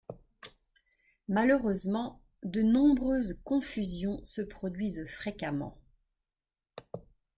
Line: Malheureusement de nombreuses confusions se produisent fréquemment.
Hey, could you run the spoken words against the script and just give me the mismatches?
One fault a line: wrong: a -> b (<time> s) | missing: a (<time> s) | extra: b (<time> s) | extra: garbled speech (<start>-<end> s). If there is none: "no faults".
no faults